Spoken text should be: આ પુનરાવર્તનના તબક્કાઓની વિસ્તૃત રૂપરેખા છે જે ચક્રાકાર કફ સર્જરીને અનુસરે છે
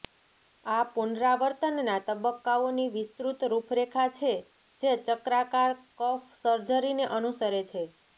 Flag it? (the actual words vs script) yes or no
no